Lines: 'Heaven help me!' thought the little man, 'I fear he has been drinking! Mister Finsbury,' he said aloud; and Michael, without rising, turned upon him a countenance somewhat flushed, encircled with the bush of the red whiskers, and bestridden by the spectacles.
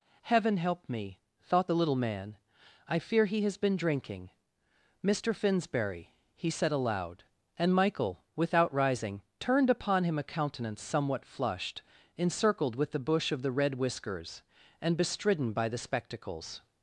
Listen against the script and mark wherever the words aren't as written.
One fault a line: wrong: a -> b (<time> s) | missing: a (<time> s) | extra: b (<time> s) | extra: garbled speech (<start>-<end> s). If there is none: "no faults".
no faults